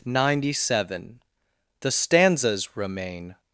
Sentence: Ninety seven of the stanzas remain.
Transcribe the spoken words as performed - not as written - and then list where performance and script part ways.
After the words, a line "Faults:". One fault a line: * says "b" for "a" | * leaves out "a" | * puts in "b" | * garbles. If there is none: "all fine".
Ninety seven the stanzas remain.
Faults:
* leaves out "of"